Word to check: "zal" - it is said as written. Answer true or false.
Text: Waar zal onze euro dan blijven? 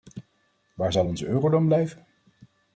true